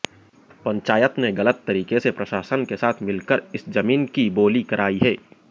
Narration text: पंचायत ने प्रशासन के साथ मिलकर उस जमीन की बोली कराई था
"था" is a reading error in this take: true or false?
true